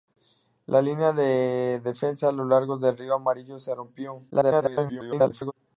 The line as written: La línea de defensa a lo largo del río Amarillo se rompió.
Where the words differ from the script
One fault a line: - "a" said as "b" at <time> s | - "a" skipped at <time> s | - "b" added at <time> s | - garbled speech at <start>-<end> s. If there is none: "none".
- garbled speech at 4.3-5.5 s